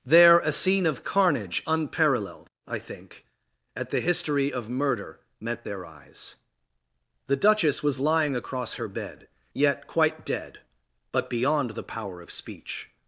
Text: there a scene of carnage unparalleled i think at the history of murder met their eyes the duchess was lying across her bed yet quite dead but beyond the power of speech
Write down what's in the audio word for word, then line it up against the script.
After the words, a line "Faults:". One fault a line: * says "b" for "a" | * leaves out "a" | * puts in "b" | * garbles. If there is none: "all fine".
there a scene of carnage unparalleled i think at the history of murder met their eyes the duchess was lying across her bed yet quite dead but beyond the power of speech
Faults:
all fine